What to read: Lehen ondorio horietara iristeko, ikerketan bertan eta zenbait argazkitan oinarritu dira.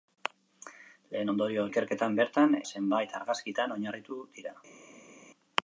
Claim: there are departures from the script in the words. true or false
true